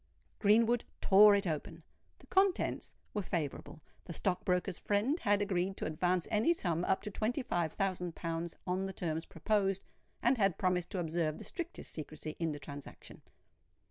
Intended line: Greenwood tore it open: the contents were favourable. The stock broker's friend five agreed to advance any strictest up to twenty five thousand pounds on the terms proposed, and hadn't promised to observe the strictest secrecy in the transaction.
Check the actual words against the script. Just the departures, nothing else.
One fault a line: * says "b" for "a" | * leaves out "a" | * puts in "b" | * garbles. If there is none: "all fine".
* says "had" for "five"
* says "sum" for "strictest"
* says "had" for "hadn't"